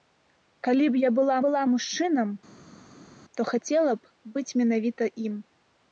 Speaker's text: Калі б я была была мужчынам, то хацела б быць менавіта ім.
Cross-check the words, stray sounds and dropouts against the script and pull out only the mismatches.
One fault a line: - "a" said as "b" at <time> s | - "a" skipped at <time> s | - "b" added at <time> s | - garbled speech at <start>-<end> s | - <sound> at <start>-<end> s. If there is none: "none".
none